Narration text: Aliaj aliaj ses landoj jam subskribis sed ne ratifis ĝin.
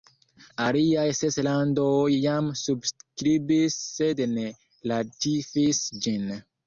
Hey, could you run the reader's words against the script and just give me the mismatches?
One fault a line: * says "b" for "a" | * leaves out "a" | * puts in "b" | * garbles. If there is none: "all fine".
* leaves out "aliaj"